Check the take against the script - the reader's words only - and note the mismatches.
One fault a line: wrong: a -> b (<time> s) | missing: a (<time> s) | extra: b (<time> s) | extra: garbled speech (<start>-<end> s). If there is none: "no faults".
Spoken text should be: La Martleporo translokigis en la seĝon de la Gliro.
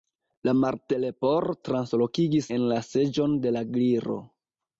no faults